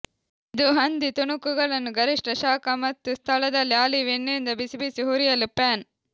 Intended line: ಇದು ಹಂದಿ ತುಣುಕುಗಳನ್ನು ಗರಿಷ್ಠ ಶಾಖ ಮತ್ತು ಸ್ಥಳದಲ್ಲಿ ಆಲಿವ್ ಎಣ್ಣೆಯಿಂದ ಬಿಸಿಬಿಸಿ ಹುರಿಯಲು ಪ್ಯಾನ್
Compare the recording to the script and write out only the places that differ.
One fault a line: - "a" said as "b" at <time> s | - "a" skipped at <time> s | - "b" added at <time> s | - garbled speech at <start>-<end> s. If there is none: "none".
none